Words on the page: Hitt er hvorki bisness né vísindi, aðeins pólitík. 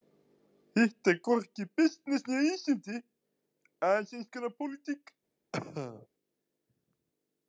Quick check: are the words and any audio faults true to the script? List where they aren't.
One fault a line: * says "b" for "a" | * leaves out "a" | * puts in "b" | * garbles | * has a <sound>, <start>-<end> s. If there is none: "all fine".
* puts in "eins konar"
* has a cough, 5.5-6.1 s